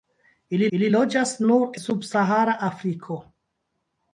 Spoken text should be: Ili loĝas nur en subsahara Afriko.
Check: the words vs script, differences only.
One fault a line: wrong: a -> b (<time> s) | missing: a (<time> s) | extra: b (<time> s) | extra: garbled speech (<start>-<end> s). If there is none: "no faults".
extra: ili (0.8 s)
missing: en (1.8 s)